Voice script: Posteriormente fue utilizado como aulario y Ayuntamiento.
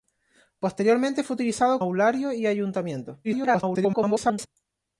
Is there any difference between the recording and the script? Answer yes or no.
yes